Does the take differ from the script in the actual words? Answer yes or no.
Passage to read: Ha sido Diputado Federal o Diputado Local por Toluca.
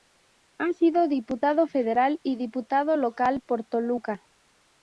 yes